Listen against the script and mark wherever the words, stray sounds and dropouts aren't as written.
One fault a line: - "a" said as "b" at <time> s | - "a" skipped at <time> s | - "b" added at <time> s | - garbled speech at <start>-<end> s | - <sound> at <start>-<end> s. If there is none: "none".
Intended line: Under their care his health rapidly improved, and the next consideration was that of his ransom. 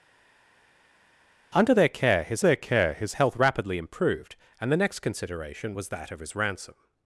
- "their care his" added at 2.4 s